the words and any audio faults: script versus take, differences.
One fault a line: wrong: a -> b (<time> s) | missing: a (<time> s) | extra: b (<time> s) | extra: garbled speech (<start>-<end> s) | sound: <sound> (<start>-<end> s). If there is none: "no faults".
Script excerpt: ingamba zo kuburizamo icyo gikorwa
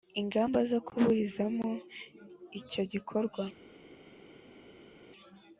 no faults